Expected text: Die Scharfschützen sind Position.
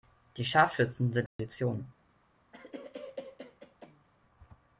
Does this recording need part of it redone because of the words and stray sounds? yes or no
yes